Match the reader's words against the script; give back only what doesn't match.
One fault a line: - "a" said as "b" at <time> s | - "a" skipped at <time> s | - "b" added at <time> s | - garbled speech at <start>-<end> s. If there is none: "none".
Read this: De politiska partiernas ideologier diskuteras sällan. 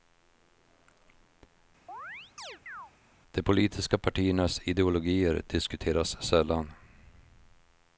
none